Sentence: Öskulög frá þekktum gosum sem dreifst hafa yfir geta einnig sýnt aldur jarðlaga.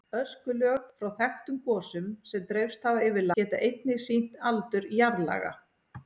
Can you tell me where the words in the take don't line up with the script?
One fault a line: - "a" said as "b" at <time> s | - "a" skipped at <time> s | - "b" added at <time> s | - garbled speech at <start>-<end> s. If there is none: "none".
none